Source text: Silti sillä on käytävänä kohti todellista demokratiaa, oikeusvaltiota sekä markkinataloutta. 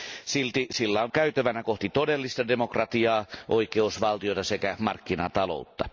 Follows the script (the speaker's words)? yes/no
yes